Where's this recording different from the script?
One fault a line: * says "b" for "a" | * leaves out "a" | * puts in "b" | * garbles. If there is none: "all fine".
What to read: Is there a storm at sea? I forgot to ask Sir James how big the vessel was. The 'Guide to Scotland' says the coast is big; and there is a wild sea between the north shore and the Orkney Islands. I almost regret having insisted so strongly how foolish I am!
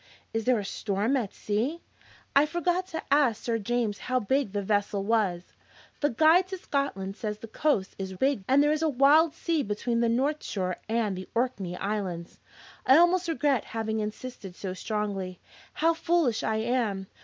all fine